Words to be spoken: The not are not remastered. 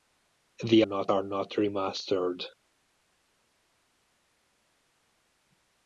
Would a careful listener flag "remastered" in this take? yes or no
no